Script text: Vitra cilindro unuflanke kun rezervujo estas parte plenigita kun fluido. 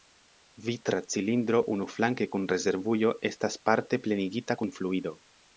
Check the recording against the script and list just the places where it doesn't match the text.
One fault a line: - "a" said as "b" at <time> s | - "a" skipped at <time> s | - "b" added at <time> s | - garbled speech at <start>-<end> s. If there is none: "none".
none